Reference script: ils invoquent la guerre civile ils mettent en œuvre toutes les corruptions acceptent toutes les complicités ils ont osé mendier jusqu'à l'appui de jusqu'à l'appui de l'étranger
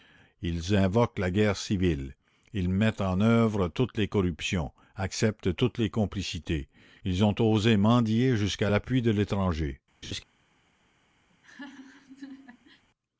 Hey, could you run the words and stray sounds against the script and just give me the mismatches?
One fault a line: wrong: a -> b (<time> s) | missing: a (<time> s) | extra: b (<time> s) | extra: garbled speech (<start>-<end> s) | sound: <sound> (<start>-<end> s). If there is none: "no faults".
missing: jusqu'à l'appui de (9.1 s)
sound: laugh (10.0-10.2 s)
sound: laugh (11.3-12.8 s)